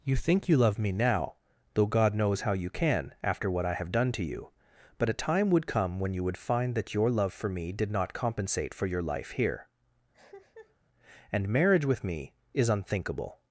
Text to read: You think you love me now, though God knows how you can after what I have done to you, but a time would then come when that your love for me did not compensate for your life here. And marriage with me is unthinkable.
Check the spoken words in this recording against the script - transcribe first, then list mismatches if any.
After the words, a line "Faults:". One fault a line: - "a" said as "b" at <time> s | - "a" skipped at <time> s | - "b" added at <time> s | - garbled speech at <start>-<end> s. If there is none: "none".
You think you love me now, though God knows how you can after what I have done to you, but a time would come when you would find that your love for me did not compensate for your life here. And marriage with me is unthinkable.
Faults:
- "then" skipped at 5.7 s
- "you would find" added at 6.1 s